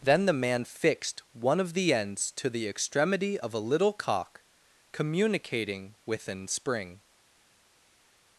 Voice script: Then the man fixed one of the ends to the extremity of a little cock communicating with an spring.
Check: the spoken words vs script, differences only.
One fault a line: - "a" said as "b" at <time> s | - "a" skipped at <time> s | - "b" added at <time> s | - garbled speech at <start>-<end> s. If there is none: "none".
none